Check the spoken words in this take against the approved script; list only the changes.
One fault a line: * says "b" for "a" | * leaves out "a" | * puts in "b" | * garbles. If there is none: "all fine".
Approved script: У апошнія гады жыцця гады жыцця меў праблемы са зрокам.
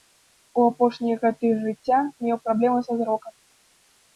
* leaves out "гады жыцця"